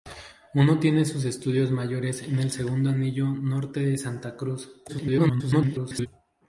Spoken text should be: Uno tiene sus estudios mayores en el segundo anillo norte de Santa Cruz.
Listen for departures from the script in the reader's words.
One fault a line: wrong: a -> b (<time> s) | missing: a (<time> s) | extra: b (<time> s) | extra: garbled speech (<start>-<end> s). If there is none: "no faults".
extra: garbled speech (4.9-6.1 s)